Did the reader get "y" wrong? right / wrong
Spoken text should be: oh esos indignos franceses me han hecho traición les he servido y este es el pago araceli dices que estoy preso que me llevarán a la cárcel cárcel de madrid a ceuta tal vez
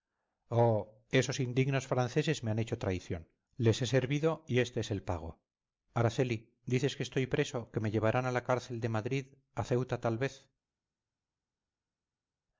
right